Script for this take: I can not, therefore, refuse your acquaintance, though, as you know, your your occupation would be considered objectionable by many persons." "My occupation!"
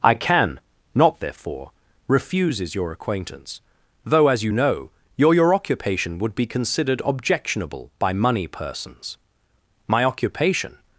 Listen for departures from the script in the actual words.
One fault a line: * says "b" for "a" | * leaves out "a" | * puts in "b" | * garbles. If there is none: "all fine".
* says "refuses" for "refuse"
* says "money" for "many"